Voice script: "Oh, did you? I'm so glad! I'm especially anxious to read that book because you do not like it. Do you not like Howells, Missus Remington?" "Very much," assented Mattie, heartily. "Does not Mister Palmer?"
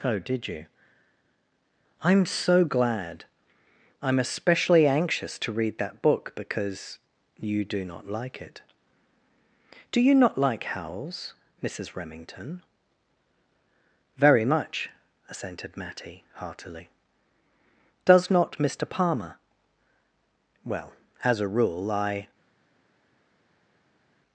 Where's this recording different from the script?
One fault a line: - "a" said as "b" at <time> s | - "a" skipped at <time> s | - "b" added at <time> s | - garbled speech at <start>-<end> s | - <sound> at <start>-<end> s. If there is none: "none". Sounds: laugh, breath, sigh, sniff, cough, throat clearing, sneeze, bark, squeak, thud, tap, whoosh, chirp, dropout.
- "Well as a rule I" added at 20.6 s